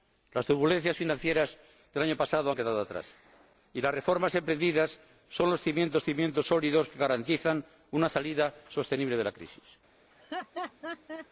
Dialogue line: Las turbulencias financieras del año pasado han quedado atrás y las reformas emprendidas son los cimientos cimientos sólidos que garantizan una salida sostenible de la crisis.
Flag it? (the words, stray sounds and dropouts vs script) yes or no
yes